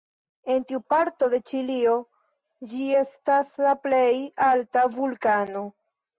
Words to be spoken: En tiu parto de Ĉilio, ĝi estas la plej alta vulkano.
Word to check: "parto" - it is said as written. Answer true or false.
true